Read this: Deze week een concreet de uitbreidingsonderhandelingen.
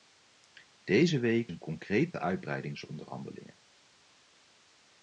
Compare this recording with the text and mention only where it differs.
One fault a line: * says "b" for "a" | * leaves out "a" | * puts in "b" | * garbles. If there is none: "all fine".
all fine